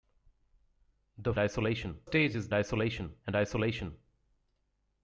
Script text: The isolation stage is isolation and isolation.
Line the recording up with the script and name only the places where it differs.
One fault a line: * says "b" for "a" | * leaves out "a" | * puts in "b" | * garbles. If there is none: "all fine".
all fine